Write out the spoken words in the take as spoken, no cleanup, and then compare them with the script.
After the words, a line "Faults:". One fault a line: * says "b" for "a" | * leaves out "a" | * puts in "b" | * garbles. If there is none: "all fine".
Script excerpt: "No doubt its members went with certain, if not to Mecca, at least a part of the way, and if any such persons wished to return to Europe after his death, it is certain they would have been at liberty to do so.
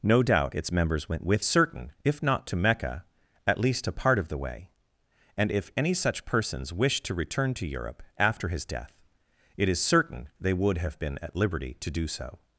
"No doubt its members went with certain, if not to Mecca, at least a part of the way, and if any such persons wished to return to Europe after his death, it is certain they would have been at liberty to do so.
Faults:
all fine